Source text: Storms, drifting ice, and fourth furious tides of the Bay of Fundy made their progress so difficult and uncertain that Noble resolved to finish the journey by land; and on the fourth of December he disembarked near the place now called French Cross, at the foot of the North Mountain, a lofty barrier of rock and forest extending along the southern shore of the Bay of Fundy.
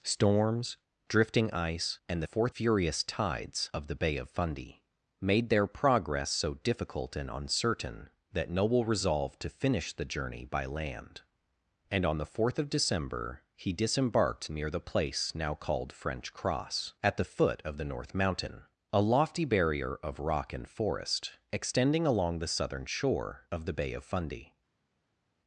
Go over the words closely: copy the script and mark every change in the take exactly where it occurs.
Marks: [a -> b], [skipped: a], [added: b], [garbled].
Storms, drifting ice, and fourth furious tides of the Bay of Fundy made their progress so difficult and uncertain that Noble resolved to finish the journey by land; and on the fourth of December he disembarked near the place now called French Cross, at the foot of the North Mountain, a lofty barrier of rock and forest extending along the southern shore of the Bay of Fundy.